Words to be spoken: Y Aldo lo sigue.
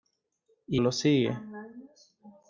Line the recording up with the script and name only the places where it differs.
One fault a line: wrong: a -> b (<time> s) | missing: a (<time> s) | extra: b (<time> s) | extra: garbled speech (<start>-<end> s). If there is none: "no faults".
missing: Aldo (0.8 s)